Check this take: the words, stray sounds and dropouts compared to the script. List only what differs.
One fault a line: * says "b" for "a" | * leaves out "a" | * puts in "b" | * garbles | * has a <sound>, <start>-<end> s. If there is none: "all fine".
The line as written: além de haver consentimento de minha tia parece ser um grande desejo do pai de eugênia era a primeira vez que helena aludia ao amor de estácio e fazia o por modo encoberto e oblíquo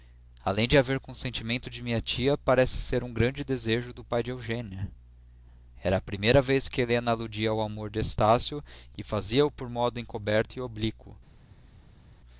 all fine